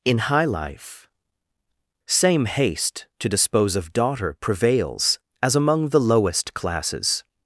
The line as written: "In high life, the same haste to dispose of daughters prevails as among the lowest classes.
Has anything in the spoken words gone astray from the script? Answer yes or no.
yes